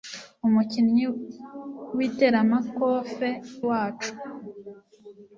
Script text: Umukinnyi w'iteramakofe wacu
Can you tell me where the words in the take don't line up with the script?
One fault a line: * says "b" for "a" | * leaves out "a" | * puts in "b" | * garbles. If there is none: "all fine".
all fine